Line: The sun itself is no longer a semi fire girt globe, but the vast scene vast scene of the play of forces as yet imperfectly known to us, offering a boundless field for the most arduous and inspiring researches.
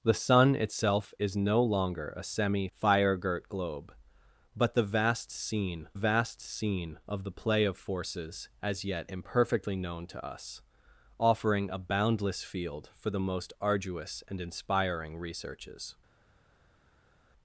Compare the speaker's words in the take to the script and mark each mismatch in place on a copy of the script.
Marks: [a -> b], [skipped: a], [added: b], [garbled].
The sun itself is no longer a semi fire girt globe, but the vast scene vast scene of the play of forces as yet imperfectly known to us, offering a boundless field for the most arduous and inspiring researches.